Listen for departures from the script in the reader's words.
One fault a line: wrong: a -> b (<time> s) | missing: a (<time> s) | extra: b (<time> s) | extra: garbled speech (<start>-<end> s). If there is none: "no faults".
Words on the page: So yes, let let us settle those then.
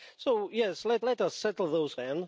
no faults